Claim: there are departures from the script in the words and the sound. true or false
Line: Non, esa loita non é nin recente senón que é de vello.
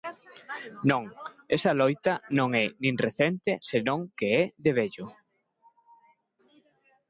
false